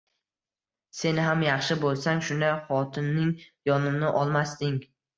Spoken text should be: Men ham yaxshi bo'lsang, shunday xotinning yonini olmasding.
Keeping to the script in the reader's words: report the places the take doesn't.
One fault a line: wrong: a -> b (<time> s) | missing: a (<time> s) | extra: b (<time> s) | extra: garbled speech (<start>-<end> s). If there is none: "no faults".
wrong: Men -> Sen (1.0 s)